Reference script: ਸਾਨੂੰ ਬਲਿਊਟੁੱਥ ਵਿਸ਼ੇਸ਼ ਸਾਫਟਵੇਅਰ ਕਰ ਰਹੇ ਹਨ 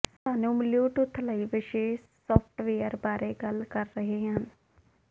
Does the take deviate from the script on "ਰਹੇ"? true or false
false